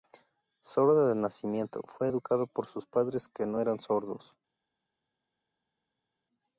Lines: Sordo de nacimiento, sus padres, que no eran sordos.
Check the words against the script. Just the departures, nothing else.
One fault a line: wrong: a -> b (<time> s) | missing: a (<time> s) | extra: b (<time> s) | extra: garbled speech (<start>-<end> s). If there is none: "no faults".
extra: fue educado por (1.9 s)